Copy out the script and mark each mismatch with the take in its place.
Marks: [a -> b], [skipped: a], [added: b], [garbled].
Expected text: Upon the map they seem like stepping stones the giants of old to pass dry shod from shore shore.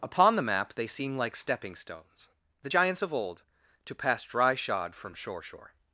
Upon the map they seem like stepping stones the giants of old to pass dry shod from shore shore.